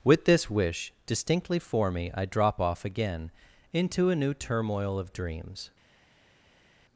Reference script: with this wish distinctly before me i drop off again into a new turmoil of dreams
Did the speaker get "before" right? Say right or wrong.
wrong